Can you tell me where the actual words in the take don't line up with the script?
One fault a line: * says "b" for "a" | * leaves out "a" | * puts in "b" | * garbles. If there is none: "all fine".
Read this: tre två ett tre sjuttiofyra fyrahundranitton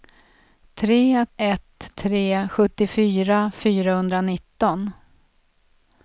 * leaves out "två"